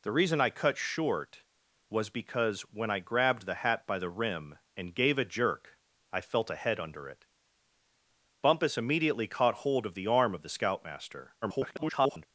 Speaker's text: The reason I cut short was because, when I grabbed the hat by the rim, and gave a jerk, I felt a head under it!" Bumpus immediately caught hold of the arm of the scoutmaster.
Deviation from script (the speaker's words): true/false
true